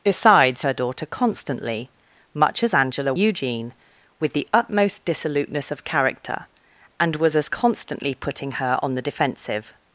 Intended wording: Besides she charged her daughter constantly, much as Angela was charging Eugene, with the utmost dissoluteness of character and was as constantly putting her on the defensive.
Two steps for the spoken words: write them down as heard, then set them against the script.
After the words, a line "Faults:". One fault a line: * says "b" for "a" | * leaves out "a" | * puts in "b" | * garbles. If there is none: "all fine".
Besides her daughter constantly, much as Angela Eugene, with the utmost dissoluteness of character and was as constantly putting her on the defensive.
Faults:
* leaves out "she charged"
* leaves out "was charging"